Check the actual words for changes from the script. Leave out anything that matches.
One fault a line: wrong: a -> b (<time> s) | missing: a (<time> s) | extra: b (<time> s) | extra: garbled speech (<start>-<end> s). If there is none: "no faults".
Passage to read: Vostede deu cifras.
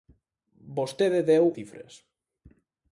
no faults